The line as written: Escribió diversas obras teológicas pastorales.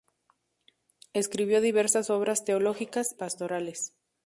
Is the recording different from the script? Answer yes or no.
no